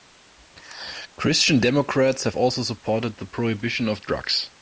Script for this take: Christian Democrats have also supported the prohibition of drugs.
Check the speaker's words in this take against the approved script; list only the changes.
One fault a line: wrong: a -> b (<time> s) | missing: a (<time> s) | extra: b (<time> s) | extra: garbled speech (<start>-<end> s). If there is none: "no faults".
no faults